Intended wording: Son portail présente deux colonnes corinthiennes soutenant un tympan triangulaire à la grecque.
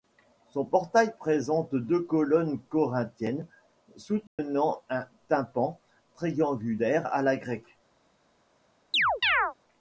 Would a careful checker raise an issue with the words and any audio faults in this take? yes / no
yes